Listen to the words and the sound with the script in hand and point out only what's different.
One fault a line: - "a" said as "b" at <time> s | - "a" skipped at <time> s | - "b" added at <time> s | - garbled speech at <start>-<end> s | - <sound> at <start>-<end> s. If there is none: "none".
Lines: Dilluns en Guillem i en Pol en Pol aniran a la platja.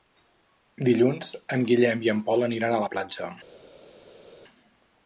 - "en Pol" skipped at 2.5 s